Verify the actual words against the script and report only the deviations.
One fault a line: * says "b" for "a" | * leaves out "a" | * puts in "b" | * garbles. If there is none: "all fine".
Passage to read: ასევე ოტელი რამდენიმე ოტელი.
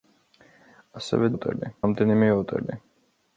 all fine